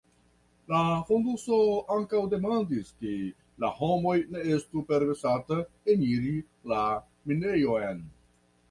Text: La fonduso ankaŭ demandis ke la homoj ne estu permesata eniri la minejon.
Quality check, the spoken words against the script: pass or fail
pass